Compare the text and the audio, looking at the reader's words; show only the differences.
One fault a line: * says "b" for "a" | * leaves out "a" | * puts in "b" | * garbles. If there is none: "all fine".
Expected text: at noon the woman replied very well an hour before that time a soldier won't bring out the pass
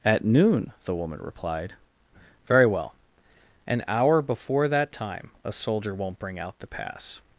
all fine